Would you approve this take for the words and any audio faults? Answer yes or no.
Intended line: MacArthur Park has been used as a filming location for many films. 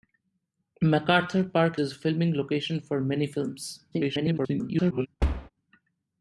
no